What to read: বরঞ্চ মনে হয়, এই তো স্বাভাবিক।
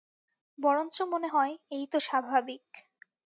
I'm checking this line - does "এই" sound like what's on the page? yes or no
yes